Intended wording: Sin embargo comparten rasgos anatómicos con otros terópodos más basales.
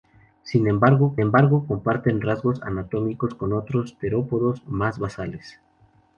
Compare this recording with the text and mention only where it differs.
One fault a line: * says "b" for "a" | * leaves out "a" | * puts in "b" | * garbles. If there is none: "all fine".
* puts in "embargo"